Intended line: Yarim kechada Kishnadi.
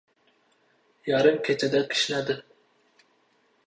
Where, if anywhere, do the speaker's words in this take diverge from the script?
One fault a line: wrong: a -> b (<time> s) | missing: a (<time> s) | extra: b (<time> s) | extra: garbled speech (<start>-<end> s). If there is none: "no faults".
no faults